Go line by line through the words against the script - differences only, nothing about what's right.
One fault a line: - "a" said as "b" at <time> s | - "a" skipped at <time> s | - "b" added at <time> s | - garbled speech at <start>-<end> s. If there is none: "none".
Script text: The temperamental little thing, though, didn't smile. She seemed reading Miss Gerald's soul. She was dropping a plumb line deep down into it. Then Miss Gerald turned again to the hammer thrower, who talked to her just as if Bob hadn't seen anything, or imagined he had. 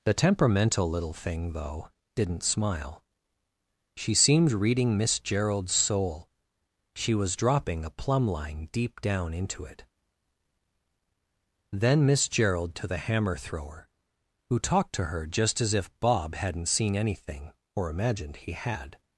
- "turned again" skipped at 12.7 s